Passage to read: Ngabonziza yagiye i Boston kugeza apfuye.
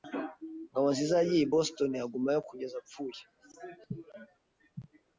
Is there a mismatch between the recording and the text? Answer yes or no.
yes